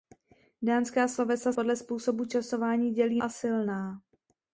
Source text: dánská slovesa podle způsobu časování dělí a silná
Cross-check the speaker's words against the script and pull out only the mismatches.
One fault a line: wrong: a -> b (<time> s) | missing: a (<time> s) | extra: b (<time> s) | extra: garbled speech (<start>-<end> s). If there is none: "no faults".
no faults